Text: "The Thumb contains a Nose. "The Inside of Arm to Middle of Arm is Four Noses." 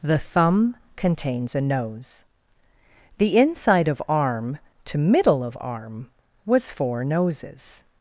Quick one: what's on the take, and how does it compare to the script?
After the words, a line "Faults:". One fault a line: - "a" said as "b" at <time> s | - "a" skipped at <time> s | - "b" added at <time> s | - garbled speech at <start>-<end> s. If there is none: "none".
"The Thumb contains a Nose. "The Inside of Arm to Middle of Arm was Four Noses."
Faults:
- "is" said as "was" at 6.4 s